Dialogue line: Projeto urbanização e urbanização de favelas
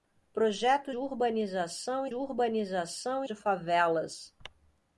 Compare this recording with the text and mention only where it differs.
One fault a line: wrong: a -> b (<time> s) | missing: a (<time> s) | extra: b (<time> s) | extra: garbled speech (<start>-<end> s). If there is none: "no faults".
no faults